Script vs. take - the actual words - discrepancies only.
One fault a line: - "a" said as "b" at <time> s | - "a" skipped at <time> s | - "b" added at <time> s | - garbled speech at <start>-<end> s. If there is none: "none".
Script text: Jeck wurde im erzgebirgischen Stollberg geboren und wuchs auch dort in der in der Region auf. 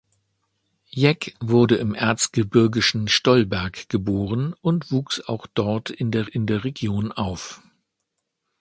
none